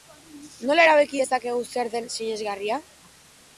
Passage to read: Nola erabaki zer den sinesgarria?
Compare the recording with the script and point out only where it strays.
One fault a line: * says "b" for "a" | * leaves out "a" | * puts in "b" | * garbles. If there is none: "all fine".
* puts in "dezakegu"